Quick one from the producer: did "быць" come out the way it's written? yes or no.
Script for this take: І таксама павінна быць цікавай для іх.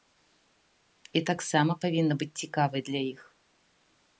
yes